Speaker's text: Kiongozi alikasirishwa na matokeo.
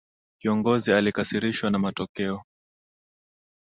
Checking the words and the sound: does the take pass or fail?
pass